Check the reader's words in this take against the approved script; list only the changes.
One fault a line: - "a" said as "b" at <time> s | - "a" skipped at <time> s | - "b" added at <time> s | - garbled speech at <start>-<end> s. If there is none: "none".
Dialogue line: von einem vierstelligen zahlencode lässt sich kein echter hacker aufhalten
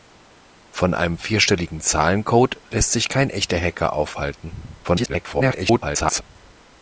- garbled speech at 4.8-6.2 s